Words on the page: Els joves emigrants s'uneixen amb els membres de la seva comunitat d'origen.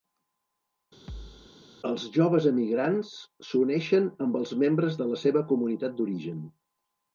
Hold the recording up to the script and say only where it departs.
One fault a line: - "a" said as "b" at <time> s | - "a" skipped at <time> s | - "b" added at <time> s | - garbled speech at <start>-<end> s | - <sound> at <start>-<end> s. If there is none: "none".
- thud at 1.1-1.5 s